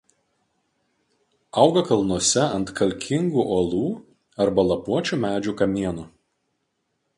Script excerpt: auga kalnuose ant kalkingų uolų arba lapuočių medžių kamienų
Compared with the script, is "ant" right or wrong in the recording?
right